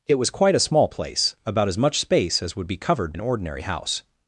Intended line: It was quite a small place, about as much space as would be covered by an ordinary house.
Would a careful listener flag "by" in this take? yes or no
yes